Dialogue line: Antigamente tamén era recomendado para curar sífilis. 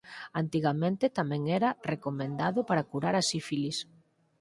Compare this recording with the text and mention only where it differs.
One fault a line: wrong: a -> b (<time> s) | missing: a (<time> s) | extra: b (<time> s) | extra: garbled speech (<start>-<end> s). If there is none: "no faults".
extra: a (3.2 s)